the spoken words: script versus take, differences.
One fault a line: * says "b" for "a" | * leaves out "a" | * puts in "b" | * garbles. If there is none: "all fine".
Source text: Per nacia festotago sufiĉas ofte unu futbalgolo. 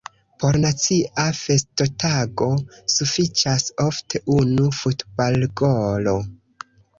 * says "Por" for "Per"